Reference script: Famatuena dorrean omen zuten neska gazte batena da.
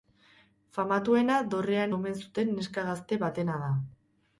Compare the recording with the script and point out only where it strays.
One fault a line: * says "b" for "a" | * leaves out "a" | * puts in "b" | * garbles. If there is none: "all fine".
all fine